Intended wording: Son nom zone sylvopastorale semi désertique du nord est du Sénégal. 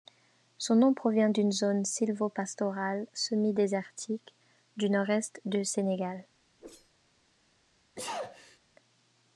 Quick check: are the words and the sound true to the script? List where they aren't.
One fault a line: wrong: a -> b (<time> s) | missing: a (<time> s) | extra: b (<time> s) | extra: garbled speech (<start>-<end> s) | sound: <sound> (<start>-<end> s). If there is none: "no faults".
extra: provient d'une (0.9 s)
sound: whoosh (6.6-6.9 s)
sound: sneeze (8.0-8.6 s)